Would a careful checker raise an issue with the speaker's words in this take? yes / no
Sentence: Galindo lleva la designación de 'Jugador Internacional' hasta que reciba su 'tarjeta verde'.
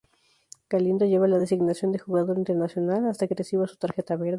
yes